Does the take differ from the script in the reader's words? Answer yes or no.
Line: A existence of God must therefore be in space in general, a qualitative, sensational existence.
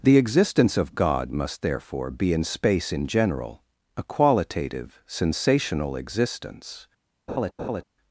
yes